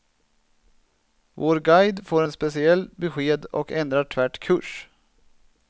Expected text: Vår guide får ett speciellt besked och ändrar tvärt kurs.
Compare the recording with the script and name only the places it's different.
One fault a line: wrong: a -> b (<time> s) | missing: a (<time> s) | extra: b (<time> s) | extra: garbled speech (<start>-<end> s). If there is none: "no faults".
no faults